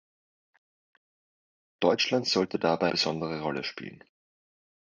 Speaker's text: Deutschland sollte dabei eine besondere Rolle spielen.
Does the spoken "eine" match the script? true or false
false